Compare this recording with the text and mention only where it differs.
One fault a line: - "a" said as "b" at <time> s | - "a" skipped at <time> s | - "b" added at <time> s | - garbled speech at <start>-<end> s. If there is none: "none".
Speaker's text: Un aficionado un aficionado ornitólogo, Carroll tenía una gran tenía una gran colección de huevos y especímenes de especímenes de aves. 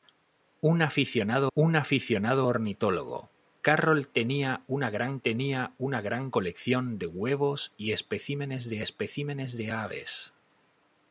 none